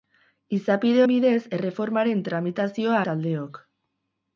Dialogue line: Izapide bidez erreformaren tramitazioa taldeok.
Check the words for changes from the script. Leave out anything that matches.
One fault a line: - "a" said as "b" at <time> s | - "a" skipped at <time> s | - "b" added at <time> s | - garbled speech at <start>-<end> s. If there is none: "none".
none